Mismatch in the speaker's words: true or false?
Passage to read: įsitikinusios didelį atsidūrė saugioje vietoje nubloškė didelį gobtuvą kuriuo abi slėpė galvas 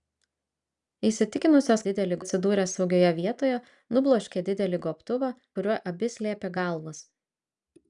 false